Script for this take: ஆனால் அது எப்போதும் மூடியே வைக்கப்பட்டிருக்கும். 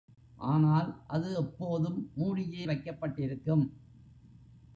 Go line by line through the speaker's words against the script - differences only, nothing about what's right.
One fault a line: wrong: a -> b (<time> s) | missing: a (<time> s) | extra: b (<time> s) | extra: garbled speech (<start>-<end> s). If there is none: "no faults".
no faults